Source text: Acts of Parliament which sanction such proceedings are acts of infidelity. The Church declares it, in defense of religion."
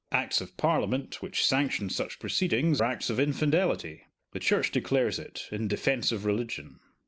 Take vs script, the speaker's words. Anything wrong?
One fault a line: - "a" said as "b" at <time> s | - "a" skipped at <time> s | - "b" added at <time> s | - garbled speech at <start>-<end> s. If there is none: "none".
- "are" skipped at 2.8 s